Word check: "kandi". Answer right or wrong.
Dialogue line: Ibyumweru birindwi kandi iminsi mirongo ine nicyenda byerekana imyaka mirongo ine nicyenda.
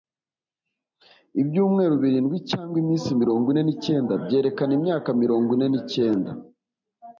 wrong